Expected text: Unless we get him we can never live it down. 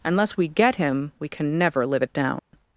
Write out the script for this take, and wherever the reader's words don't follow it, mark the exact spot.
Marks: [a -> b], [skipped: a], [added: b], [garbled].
Unless we get him we can never live it down.